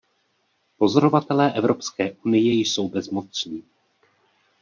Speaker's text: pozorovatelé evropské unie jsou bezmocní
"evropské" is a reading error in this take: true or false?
false